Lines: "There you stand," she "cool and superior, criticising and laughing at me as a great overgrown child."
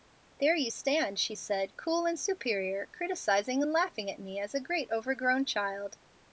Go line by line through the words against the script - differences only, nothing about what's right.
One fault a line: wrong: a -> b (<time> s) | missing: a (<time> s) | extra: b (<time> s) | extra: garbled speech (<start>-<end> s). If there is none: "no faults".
extra: said (1.4 s)